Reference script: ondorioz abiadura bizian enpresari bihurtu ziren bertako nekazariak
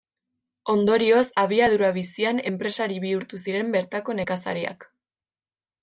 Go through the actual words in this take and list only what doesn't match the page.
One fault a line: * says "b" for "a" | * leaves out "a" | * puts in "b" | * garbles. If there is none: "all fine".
all fine